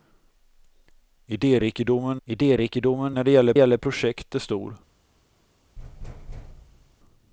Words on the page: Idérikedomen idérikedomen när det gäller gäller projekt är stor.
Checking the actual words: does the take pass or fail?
pass